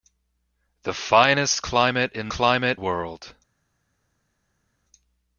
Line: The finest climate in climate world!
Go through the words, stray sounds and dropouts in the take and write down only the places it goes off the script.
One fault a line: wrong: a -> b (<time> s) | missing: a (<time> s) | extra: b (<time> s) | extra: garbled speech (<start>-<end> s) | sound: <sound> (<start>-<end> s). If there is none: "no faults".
no faults